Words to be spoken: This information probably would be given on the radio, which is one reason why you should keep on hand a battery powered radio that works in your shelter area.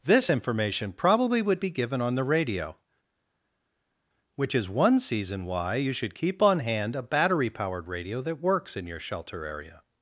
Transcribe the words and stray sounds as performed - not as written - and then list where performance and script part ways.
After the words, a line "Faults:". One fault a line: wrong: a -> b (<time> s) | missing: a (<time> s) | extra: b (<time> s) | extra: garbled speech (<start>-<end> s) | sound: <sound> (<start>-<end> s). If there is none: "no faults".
This information probably would be given on the radio, which is one season why you should keep on hand a battery powered radio that works in your shelter area.
Faults:
wrong: reason -> season (5.0 s)